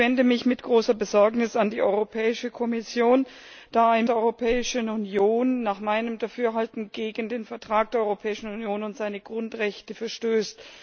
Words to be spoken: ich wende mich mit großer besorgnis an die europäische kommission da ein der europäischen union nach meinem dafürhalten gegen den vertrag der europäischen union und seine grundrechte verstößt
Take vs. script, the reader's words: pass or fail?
pass